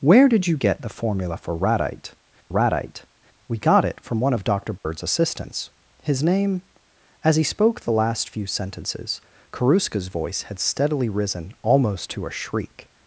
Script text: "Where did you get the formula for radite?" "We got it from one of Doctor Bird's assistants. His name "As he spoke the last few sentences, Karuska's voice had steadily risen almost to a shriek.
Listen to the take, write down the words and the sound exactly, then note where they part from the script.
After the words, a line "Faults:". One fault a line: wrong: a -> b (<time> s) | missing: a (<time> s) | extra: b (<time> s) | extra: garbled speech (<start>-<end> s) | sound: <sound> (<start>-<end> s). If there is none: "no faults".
"Where did you get the formula for radite radite?" "We got it from one of Doctor Bird's assistants. His name "As he spoke the last few sentences, Karuska's voice had steadily risen almost to a shriek.
Faults:
extra: radite (2.5 s)
sound: dropout (4.8-4.8 s)